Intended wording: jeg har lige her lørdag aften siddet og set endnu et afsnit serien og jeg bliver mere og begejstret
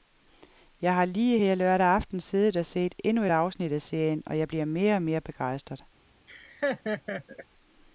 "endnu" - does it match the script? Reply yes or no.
yes